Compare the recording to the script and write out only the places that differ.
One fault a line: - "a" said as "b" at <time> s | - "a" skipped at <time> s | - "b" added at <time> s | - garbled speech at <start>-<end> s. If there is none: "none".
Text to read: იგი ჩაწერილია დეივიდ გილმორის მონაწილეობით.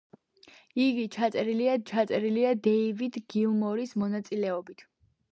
- "ჩაწერილია" added at 1.9 s